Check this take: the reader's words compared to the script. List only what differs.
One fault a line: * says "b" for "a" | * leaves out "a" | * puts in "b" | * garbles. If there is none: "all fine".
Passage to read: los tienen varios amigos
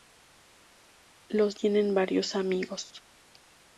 all fine